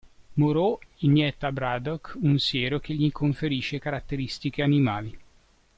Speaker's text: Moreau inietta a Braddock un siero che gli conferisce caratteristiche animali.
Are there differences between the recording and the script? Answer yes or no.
no